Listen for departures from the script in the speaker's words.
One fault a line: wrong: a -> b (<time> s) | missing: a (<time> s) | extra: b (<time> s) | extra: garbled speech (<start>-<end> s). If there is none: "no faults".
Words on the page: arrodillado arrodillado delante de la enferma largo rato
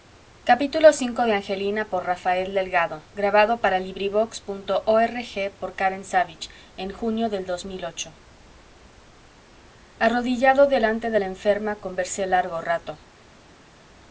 missing: arrodillado (10.7 s)
extra: conversé (11.7 s)